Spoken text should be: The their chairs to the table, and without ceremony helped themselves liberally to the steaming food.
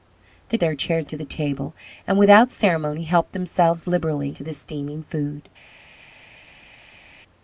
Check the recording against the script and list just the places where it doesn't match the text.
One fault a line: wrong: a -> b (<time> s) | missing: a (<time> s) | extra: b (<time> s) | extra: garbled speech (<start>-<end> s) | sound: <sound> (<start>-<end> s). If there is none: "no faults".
no faults